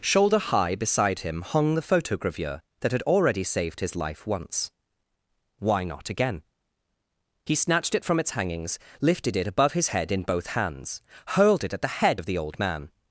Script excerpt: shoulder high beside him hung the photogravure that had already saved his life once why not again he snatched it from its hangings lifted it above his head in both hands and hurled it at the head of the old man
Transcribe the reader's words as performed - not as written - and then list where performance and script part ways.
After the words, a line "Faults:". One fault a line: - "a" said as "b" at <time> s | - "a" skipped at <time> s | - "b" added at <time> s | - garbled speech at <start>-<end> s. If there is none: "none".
shoulder high beside him hung the photogravure that had already saved his life once why not again he snatched it from its hangings lifted it above his head in both hands hurled it at the head of the old man
Faults:
- "and" skipped at 11.0 s